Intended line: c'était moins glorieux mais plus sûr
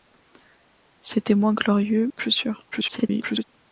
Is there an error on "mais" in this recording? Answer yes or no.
yes